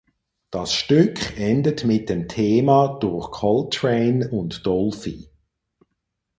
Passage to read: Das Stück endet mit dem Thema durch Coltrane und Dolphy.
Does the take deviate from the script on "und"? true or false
false